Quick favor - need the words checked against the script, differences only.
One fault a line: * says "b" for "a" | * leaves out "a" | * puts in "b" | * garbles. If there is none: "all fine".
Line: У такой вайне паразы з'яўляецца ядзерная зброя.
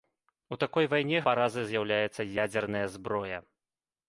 all fine